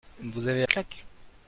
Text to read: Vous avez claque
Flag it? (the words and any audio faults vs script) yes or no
no